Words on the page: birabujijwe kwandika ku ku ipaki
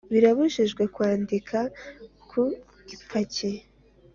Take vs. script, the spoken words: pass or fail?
fail